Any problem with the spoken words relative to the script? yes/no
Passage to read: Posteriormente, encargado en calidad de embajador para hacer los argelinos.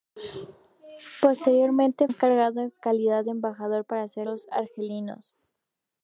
no